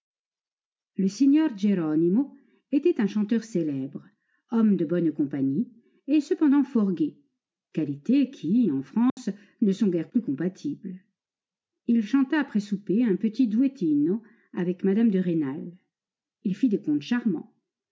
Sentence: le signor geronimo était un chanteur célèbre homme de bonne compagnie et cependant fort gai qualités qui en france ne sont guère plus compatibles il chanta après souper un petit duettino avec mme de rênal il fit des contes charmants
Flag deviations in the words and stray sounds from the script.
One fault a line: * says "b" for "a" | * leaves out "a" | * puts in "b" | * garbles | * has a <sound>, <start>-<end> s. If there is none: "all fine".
* has a dropout, 9.1-9.2 s